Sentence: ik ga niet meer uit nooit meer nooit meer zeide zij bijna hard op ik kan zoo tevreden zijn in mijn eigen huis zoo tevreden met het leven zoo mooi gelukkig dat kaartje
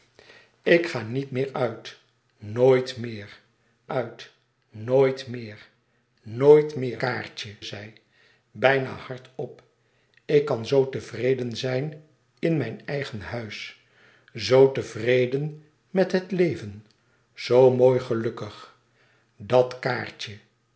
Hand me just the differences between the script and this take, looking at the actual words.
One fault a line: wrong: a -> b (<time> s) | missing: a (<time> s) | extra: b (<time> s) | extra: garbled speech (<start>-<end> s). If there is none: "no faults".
extra: uit (3.9 s)
wrong: zeide -> nooit meer kaartje (6.2 s)